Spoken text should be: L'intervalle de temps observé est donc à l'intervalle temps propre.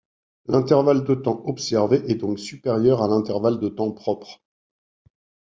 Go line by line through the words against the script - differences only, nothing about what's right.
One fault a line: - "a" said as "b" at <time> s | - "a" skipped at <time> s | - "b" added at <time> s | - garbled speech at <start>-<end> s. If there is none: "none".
- "supérieur" added at 2.4 s
- "de" added at 3.6 s